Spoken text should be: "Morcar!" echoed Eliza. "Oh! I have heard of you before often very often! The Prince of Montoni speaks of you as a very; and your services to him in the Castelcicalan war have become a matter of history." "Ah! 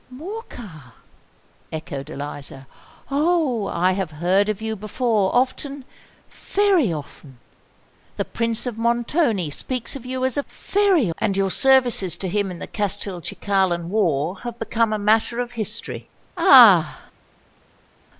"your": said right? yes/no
yes